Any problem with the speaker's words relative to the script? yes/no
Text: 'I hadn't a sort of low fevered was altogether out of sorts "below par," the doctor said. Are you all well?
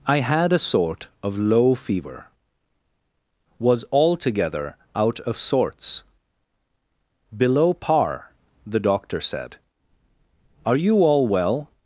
yes